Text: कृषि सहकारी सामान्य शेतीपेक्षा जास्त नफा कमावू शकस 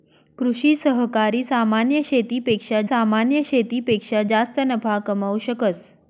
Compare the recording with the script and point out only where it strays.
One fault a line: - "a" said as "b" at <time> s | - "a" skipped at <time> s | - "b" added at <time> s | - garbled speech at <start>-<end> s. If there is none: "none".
- "सामान्य शेतीपेक्षा" added at 2.8 s